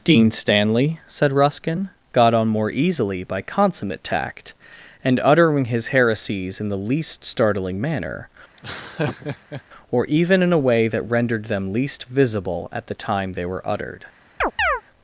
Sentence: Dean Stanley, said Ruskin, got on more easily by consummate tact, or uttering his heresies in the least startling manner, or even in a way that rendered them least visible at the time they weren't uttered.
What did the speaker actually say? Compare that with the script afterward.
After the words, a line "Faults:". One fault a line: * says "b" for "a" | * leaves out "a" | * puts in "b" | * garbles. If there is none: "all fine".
Dean Stanley, said Ruskin, got on more easily by consummate tact, and uttering his heresies in the least startling manner, or even in a way that rendered them least visible at the time they were uttered.
Faults:
* says "and" for "or"
* says "were" for "weren't"